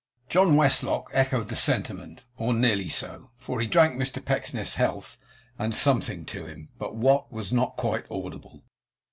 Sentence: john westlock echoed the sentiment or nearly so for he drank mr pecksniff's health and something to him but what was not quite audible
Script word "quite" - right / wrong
right